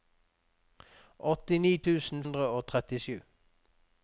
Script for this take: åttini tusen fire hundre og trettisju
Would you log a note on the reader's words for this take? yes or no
yes